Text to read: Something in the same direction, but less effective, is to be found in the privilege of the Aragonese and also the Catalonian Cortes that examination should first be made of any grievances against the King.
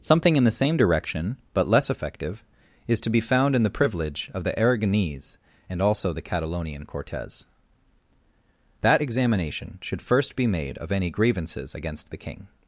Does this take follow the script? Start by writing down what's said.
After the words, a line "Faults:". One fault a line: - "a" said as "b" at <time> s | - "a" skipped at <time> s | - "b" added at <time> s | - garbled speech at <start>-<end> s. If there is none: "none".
Something in the same direction, but less effective, is to be found in the privilege of the Aragonese and also the Catalonian Cortes that examination should first be made of any grievances against the King.
Faults:
none